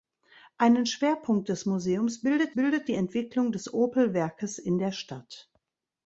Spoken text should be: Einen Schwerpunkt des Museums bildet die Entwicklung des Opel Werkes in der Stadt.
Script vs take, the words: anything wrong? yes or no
yes